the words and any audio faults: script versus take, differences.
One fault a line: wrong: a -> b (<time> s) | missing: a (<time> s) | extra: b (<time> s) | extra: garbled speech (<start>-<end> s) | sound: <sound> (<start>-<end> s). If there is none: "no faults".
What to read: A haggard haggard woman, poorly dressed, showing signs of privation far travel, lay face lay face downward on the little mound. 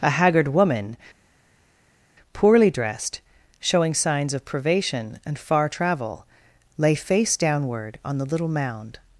missing: haggard (0.5 s)
extra: and (5.2 s)
missing: lay face (7.4 s)